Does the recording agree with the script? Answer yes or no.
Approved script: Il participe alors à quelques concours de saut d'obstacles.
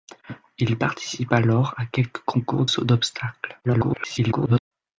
no